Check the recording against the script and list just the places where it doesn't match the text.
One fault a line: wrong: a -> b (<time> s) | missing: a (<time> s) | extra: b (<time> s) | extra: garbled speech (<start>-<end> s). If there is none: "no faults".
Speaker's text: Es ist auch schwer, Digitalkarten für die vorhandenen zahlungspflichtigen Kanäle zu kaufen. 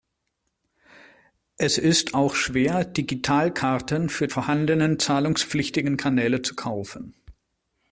missing: die (4.3 s)